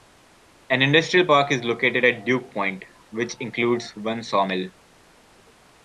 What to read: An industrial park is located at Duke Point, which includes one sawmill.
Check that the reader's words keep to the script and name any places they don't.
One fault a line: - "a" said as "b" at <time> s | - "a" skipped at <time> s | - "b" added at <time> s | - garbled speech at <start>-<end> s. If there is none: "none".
none